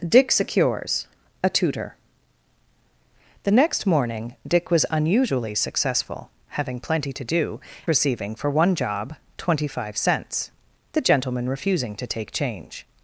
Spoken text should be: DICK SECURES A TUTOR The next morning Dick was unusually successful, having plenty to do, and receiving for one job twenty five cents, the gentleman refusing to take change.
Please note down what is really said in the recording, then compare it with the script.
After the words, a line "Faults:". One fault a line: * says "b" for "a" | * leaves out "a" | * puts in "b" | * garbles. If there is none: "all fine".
DICK SECURES A TUTOR The next morning Dick was unusually successful, having plenty to do, receiving for one job twenty five cents, the gentleman refusing to take change.
Faults:
* leaves out "and"